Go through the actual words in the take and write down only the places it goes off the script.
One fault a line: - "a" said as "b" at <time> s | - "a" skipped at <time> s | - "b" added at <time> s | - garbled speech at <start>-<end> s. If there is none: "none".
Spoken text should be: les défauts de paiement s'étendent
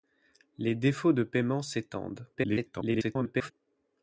- garbled speech at 2.3-3.5 s